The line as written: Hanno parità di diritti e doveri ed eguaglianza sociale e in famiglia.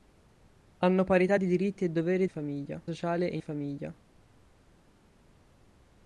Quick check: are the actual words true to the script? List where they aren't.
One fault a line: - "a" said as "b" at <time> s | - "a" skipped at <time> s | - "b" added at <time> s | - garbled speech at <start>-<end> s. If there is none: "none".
- "eguaglianza" said as "famiglia" at 2.3 s
- "in" skipped at 3.4 s